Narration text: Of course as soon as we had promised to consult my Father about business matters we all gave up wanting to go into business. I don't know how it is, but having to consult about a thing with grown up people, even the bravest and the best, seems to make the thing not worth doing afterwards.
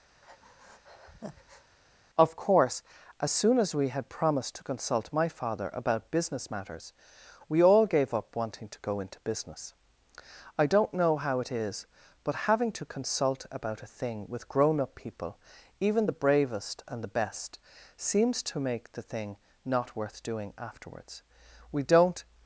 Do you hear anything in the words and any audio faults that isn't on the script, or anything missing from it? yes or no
yes